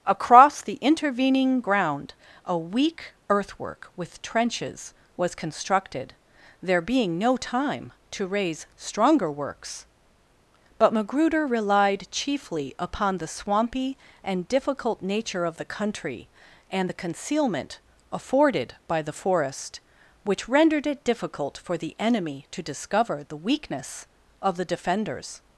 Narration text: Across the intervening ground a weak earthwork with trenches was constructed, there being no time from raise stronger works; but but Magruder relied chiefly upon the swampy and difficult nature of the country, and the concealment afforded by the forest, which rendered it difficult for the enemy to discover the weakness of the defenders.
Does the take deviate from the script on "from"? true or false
true